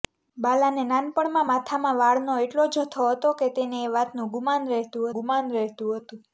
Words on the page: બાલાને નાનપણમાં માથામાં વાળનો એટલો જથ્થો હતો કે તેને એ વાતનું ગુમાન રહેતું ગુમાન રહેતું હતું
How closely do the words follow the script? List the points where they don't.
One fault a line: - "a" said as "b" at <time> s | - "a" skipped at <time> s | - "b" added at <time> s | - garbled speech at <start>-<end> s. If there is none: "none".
none